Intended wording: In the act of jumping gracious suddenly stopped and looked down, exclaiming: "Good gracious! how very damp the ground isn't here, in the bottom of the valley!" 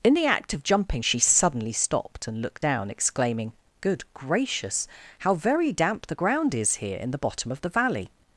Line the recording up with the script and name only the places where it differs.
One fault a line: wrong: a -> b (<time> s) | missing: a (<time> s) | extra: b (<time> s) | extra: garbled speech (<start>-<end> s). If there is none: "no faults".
wrong: gracious -> she (1.0 s)
wrong: isn't -> is (6.5 s)